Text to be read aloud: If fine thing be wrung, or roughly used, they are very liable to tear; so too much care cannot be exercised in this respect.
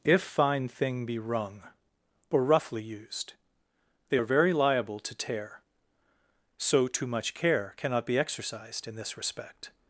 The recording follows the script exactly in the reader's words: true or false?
true